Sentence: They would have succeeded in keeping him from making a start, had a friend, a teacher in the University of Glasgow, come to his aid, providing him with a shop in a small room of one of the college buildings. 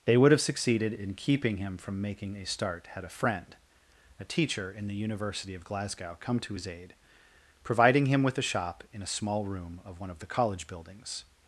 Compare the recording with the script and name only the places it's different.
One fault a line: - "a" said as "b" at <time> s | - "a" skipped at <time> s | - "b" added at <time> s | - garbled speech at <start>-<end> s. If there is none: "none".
none